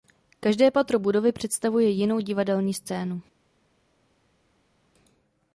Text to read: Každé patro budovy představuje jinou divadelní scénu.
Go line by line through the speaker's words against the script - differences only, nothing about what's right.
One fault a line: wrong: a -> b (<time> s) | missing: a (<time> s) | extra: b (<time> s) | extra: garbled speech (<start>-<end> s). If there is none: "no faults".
no faults